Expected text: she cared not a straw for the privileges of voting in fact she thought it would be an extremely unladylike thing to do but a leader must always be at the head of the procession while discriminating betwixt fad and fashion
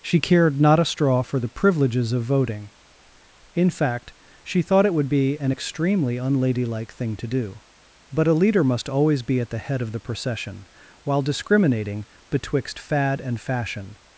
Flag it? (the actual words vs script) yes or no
no